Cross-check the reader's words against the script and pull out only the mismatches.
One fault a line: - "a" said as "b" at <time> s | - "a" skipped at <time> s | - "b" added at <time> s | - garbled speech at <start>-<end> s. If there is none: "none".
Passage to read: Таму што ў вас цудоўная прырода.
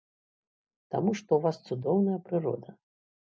none